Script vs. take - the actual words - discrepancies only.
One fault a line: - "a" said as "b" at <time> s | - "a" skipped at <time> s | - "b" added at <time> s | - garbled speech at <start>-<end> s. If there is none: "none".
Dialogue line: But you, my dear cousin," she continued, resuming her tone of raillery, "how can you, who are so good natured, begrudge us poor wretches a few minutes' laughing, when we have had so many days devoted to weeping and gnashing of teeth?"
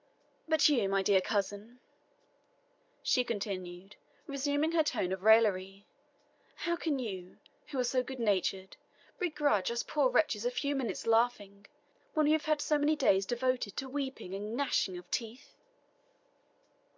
none